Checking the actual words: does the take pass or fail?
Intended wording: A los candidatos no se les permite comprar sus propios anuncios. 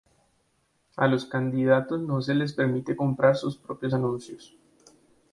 pass